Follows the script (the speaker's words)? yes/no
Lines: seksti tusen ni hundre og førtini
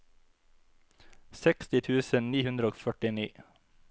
yes